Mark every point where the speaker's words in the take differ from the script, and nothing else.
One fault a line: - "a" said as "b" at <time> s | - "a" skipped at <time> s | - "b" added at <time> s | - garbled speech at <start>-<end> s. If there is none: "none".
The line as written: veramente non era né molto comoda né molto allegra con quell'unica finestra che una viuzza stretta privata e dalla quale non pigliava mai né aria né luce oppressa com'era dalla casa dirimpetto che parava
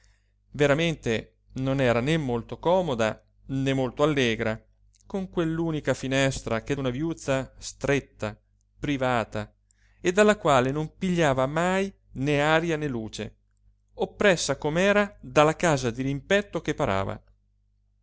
none